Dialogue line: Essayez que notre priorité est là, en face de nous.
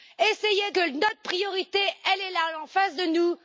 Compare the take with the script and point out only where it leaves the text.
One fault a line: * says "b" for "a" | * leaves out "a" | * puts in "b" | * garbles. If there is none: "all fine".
all fine